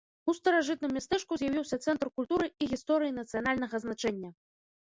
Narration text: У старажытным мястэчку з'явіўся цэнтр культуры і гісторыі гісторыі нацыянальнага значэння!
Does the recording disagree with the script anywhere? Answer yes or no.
yes